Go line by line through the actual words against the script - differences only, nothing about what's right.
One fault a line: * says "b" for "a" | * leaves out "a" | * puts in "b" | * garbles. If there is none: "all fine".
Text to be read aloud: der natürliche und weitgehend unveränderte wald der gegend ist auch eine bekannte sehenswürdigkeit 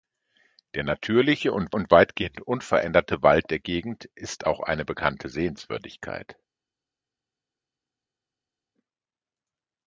* puts in "und"